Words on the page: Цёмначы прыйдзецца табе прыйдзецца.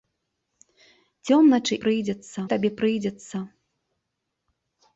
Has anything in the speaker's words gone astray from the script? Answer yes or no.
no